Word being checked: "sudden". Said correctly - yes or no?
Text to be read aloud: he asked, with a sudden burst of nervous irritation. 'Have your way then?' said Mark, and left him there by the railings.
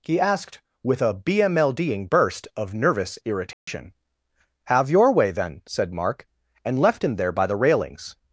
no